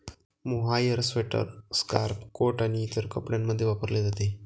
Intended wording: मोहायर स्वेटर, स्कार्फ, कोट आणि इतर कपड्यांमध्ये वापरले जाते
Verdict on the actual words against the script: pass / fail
pass